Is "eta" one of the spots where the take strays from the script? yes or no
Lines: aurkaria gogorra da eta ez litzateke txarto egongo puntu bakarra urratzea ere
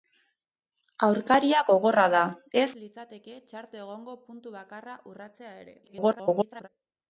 yes